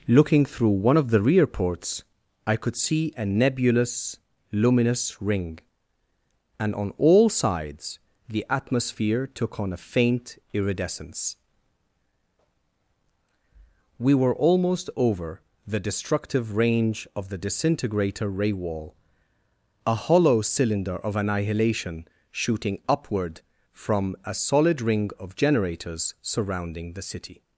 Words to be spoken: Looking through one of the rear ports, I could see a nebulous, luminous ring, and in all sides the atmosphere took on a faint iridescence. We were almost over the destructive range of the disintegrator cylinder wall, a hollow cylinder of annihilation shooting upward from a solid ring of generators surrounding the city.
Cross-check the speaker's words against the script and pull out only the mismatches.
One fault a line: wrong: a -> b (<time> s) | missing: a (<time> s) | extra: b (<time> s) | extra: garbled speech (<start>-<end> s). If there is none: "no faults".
wrong: in -> on (6.7 s)
wrong: cylinder -> ray (18.3 s)